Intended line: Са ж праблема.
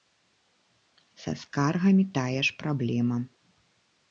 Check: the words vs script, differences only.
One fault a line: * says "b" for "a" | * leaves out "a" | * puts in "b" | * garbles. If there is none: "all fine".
* puts in "скаргамі тая"